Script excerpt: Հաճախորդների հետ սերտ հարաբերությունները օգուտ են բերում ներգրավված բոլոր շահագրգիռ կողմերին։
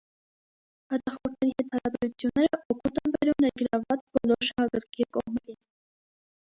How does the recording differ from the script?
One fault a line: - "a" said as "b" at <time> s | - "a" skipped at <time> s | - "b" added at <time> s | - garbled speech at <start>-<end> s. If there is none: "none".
- "սերտ" skipped at 1.7 s